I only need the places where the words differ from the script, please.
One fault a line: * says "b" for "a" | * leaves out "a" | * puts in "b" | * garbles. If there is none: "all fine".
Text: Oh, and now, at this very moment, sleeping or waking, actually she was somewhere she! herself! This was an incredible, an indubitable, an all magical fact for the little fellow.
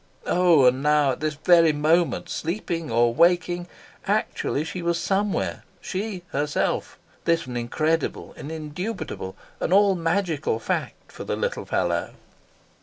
* leaves out "was"